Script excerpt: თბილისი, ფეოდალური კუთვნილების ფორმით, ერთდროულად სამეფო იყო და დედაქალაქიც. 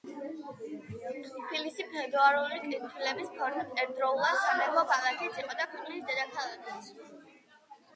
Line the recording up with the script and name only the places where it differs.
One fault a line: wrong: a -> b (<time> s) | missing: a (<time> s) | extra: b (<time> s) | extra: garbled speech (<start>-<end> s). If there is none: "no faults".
extra: ქალაქიც (4.9 s)
extra: ქვეყნის (5.7 s)